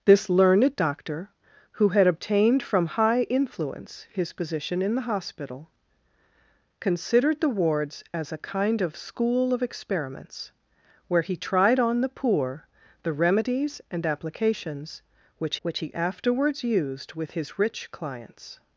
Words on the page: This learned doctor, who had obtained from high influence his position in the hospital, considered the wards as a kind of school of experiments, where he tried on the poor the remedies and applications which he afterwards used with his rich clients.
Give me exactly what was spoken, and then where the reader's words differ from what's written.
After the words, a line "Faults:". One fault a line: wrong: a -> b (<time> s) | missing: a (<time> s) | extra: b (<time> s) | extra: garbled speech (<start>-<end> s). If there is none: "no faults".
This learned doctor, who had obtained from high influence his position in the hospital, considered the wards as a kind of school of experiments, where he tried on the poor the remedies and applications which which he afterwards used with his rich clients.
Faults:
extra: which (15.6 s)